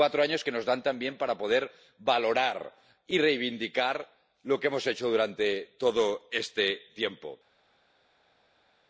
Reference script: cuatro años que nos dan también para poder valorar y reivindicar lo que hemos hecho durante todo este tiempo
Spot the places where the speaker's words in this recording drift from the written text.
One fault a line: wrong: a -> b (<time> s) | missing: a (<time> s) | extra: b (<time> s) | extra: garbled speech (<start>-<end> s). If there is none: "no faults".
no faults